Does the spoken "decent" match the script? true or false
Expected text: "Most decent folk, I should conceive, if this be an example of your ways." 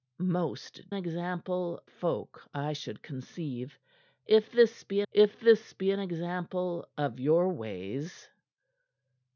false